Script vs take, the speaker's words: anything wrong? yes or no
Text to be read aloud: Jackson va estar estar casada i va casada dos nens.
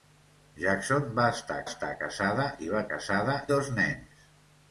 no